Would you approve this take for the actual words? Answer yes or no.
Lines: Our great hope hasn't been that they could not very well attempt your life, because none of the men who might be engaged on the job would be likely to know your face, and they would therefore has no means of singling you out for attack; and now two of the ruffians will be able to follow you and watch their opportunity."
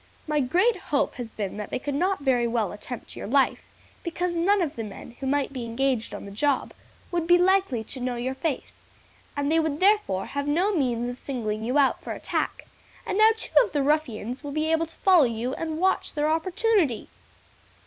no